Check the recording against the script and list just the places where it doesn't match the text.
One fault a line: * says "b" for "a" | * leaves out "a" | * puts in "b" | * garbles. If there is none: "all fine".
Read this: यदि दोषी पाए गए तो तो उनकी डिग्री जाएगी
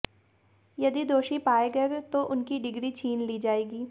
* leaves out "तो"
* puts in "छीन ली"